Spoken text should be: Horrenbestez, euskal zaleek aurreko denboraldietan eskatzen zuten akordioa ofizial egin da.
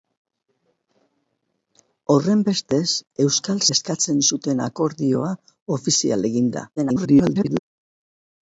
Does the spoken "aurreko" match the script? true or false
false